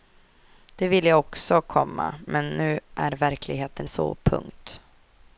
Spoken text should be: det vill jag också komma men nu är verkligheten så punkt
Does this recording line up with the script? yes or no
yes